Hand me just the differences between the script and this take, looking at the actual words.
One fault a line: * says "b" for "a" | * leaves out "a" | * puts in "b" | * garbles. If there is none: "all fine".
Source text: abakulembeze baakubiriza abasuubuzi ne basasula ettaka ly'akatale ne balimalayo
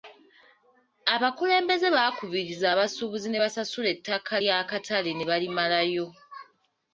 all fine